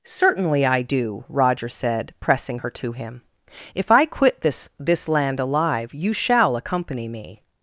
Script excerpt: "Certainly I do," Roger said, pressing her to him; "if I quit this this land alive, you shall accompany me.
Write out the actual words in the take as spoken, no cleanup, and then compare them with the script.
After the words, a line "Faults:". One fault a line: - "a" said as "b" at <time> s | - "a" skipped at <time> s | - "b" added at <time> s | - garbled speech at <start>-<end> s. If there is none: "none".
"Certainly I do," Roger said, pressing her to him; "if I quit this this land alive, you shall accompany me.
Faults:
none